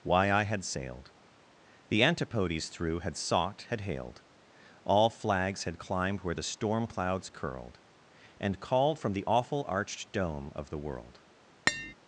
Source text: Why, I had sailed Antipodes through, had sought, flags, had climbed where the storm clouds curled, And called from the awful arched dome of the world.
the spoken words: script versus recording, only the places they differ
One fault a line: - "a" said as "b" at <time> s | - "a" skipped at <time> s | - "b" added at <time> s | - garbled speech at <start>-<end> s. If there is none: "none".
- "The" added at 1.9 s
- "had hailed All" added at 3.7 s